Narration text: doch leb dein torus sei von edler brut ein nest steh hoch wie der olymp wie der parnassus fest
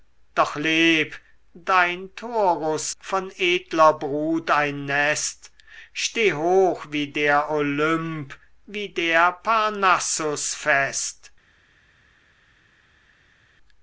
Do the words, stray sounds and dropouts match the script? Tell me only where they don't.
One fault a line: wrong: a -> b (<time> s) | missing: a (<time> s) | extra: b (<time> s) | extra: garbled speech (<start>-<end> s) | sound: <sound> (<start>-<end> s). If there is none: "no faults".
missing: sei (2.9 s)